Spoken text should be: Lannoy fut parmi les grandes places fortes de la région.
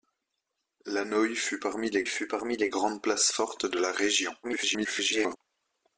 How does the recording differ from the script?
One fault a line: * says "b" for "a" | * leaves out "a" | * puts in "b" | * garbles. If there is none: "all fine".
* puts in "fut parmi les"
* garbles